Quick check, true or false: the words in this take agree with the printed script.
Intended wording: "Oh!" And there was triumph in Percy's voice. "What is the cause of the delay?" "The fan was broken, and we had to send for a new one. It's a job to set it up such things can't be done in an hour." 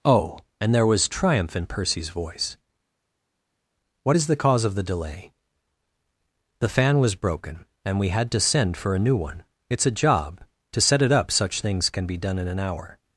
false